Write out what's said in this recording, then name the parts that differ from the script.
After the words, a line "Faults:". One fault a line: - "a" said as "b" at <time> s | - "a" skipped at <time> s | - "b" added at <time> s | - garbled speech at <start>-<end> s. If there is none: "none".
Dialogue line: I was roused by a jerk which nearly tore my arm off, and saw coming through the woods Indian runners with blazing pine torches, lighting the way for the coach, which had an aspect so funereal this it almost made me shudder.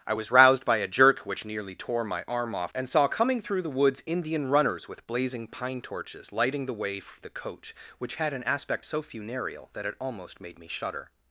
I was roused by a jerk which nearly tore my arm off, and saw coming through the woods Indian runners with blazing pine torches, lighting the way for the coach, which had an aspect so funereal that it almost made me shudder.
Faults:
- "this" said as "that" at 9.7 s